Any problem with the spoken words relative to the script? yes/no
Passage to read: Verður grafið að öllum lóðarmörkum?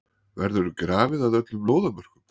no